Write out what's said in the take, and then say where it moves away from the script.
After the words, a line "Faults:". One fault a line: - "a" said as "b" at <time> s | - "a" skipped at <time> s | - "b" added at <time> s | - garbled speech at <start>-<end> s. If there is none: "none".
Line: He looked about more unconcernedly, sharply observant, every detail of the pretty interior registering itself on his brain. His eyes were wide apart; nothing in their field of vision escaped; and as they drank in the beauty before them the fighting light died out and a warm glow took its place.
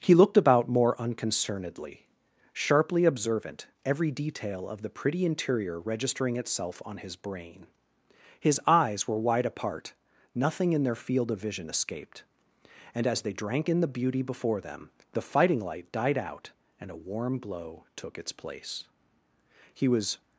He looked about more unconcernedly, sharply observant, every detail of the pretty interior registering itself on his brain. His eyes were wide apart; nothing in their field of vision escaped; and as they drank in the beauty before them the fighting light died out and a warm glow took its place. He was
Faults:
- "He was" added at 19.7 s